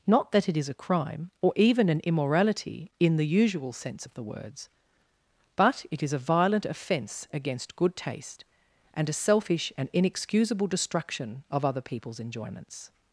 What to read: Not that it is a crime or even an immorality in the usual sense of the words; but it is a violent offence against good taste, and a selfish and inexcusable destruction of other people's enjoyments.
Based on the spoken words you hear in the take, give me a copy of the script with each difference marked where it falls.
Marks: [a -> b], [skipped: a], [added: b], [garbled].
Not that it is a crime or even an immorality in the usual sense of the words; but it is a violent offence against good taste, and a selfish and inexcusable destruction of other people's enjoyments.